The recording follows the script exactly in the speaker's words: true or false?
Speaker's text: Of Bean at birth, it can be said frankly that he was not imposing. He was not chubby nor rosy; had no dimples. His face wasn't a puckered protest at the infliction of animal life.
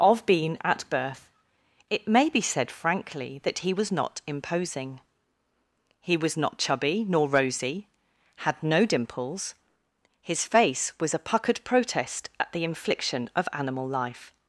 false